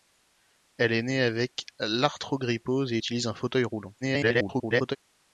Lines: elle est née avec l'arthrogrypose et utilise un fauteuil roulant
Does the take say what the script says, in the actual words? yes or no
no